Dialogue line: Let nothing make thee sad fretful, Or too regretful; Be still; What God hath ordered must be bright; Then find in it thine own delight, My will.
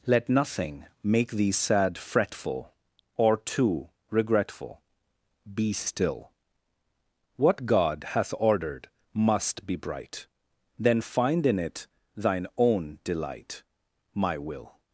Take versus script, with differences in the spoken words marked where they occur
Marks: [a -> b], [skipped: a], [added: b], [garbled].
Let nothing make thee sad fretful, Or too regretful; Be still; What God hath ordered must be bright; Then find in it thine own delight, My will.